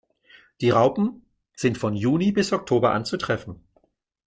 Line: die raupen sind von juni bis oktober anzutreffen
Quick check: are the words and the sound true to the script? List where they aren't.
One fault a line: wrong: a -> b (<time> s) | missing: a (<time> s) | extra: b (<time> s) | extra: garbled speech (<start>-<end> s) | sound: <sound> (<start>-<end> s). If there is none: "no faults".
no faults